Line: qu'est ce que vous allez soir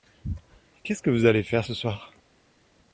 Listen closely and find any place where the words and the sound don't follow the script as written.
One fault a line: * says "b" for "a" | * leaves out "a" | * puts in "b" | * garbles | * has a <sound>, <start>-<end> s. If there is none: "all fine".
* puts in "faire ce"